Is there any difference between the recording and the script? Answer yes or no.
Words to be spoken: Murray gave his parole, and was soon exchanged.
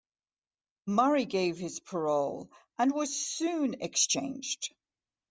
no